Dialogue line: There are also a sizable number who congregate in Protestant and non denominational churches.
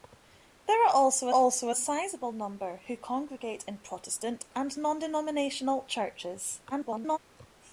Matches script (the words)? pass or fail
fail